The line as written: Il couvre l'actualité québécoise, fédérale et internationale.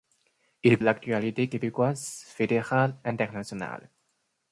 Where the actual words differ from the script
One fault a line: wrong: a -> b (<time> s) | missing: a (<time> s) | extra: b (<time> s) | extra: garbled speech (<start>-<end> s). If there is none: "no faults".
missing: couvre (0.8 s)
missing: et (3.0 s)